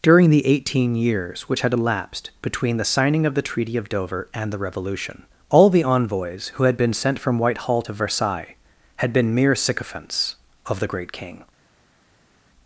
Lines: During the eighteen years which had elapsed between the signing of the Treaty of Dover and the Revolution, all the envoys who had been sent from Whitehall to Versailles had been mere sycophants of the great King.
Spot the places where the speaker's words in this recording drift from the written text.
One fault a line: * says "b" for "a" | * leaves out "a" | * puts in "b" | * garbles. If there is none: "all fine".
all fine